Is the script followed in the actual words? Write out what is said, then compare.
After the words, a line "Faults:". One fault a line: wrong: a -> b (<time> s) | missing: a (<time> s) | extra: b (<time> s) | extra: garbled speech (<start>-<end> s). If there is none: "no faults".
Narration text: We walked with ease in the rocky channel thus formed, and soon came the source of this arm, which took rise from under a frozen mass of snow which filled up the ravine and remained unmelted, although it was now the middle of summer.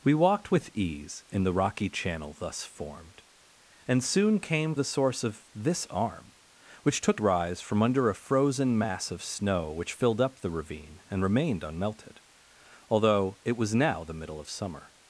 We walked with ease in the rocky channel thus formed, and soon came the source of this arm, which took rise from under a frozen mass of snow which filled up the ravine and remained unmelted, although it was now the middle of summer.
Faults:
no faults